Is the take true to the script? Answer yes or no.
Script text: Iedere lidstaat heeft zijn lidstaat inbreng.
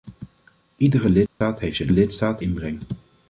yes